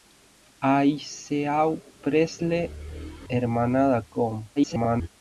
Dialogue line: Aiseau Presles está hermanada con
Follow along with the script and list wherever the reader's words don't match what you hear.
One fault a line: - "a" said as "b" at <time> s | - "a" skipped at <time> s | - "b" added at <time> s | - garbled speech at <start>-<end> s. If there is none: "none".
- "está" skipped at 2.7 s
- garbled speech at 4.6-5.1 s